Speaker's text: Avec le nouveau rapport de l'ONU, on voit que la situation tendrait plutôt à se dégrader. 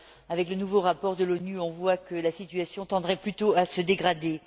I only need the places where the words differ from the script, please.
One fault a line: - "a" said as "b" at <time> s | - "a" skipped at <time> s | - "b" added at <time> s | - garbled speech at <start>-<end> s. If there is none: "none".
none